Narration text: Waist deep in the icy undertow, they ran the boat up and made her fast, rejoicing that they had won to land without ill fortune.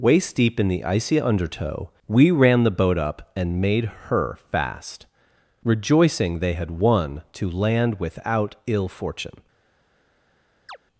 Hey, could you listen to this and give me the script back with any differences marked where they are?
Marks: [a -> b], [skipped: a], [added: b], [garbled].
Waist deep in the icy undertow, [they -> we] ran the boat up and made her fast, rejoicing [skipped: that] they had won to land without ill fortune.